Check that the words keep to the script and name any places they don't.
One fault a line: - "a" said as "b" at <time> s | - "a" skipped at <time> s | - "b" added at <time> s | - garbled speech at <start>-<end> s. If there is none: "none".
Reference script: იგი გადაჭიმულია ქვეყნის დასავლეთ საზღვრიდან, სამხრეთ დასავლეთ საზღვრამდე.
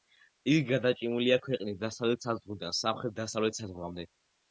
none